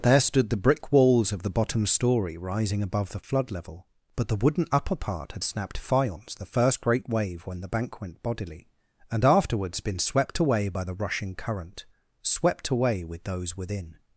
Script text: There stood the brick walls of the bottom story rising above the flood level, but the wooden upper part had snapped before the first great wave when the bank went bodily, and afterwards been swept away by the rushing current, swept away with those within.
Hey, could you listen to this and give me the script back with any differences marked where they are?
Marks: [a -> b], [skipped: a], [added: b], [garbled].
There stood the brick walls of the bottom story rising above the flood level, but the wooden upper part had snapped [before -> faience] the first great wave when the bank went bodily, and afterwards been swept away by the rushing current, swept away with those within.